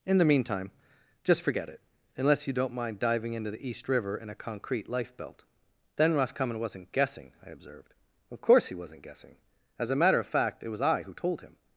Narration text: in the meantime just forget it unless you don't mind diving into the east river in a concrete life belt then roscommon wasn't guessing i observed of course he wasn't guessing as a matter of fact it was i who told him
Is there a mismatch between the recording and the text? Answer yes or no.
no